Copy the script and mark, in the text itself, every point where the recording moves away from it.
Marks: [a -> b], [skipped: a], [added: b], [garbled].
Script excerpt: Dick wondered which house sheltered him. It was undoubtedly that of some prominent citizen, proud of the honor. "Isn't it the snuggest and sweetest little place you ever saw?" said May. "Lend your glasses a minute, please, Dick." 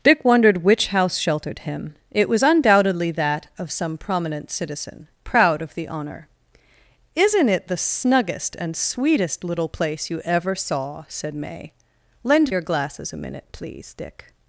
Dick wondered which house sheltered him. It was undoubtedly that of some prominent citizen, proud of the honor. "Isn't it the snuggest and sweetest little place you ever saw?" said May. "Lend your glasses a minute, please, Dick."